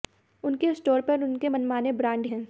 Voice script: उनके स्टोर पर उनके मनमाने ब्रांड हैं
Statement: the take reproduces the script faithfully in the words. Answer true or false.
true